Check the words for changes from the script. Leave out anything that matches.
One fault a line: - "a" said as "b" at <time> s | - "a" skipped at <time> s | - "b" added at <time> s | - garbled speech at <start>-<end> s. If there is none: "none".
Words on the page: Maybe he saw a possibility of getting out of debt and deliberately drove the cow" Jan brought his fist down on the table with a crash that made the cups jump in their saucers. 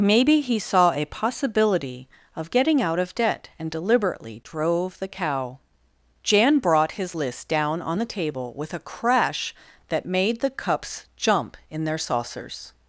- "fist" said as "list" at 7.2 s